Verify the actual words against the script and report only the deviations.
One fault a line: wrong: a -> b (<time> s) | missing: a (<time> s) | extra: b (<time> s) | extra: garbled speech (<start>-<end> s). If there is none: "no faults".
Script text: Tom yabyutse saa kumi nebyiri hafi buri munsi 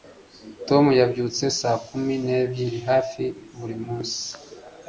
no faults